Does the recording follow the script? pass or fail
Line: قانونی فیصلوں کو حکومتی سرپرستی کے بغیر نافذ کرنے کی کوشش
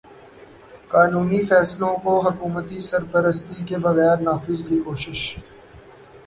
fail